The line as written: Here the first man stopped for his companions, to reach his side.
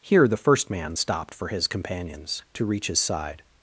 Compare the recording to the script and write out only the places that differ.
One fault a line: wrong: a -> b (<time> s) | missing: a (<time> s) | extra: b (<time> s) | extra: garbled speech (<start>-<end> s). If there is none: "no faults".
no faults